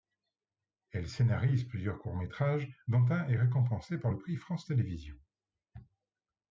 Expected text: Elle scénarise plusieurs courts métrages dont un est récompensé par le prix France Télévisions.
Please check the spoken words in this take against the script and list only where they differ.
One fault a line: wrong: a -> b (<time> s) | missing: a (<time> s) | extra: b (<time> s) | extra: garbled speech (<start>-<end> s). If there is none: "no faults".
no faults